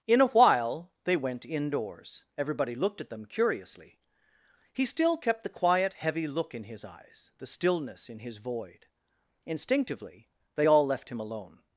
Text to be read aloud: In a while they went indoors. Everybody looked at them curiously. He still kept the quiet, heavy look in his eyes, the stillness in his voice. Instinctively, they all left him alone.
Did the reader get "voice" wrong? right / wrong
wrong